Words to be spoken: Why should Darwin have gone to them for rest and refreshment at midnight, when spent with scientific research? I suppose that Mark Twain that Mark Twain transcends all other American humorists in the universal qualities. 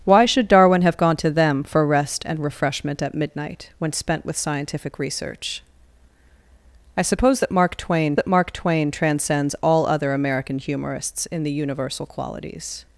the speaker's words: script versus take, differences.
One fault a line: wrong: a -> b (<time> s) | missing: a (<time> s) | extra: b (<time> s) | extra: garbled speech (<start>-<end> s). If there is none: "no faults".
no faults